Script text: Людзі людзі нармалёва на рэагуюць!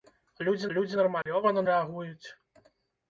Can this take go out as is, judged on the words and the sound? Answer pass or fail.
fail